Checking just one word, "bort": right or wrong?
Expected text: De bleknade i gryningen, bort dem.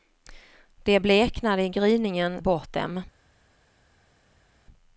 right